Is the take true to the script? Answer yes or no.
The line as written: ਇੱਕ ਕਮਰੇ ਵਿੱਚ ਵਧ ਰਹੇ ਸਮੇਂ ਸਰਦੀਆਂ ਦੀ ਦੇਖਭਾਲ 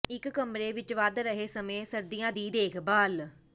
yes